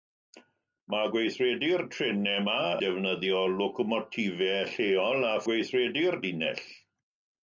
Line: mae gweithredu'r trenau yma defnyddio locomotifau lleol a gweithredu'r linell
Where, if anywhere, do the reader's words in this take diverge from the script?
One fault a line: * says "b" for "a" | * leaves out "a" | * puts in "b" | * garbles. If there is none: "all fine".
all fine